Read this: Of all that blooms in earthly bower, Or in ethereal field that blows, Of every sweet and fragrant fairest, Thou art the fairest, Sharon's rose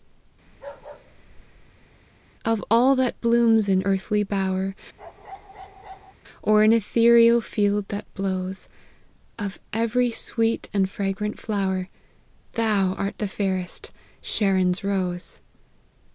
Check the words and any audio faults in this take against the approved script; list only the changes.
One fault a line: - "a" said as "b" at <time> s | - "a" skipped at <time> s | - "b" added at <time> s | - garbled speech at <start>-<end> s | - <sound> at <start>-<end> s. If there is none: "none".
- bark at 0.5-1.9 s
- bark at 5.0-6.1 s
- "fairest" said as "flower" at 11.4 s